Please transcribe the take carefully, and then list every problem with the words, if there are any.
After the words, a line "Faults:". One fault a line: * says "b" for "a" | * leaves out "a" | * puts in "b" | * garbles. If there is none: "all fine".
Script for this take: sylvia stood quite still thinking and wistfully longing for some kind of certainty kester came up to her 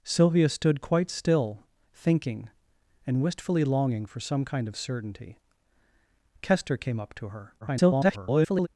sylvia stood quite still thinking and wistfully longing for some kind of certainty kester came up to her [garbled]
Faults:
* garbles